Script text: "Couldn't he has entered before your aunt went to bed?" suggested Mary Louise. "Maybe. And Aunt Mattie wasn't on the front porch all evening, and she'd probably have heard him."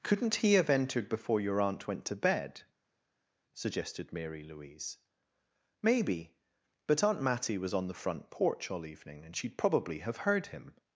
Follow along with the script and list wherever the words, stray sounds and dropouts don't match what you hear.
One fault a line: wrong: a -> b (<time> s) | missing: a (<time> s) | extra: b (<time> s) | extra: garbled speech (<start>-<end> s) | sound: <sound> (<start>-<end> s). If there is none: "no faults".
wrong: has -> have (0.5 s)
wrong: And -> But (6.9 s)
wrong: wasn't -> was (7.6 s)